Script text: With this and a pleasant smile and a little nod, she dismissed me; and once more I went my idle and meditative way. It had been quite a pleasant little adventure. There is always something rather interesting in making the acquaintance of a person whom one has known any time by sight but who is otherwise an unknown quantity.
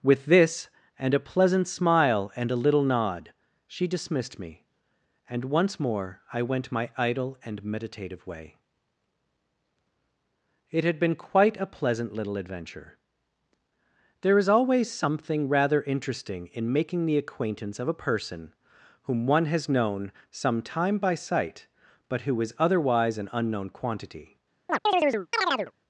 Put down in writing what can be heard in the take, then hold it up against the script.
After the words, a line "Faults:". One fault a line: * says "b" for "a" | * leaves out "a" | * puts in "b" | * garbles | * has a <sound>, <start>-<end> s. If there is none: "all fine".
With this and a pleasant smile and a little nod, she dismissed me; and once more I went my idle and meditative way. It had been quite a pleasant little adventure. There is always something rather interesting in making the acquaintance of a person whom one has known some time by sight but who is otherwise an unknown quantity.
Faults:
* says "some" for "any"
* has a chirp, 24.7-25.7 s